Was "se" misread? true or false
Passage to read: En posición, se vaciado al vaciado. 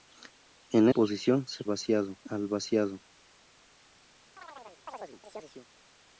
false